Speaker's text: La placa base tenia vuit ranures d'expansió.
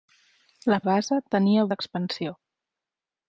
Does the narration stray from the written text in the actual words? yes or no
yes